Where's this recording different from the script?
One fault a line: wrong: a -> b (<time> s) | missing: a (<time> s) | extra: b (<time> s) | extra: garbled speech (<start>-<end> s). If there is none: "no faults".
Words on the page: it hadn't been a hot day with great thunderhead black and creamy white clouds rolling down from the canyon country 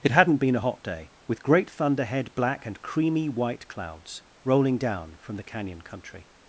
no faults